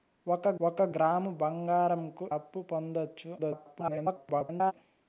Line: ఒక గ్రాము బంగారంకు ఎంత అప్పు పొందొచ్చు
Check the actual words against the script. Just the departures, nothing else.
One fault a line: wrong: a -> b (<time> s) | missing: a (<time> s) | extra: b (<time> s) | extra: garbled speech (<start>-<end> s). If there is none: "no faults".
extra: ఒక (0.6 s)
missing: ఎంత (2.2 s)
extra: garbled speech (3.4-4.7 s)